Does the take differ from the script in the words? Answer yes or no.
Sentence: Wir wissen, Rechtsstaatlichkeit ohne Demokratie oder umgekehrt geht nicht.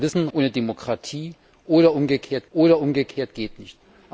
yes